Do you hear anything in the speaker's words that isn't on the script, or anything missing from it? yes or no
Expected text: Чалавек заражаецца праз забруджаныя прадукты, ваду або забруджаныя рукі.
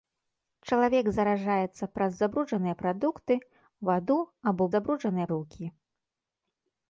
no